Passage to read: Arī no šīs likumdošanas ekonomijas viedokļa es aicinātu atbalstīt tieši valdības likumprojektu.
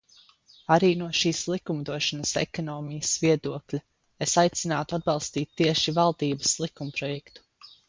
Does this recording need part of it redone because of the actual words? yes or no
no